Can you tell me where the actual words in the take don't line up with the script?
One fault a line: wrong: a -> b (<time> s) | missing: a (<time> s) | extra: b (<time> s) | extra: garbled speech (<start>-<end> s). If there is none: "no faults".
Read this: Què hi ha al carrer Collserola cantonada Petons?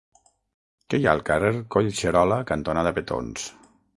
no faults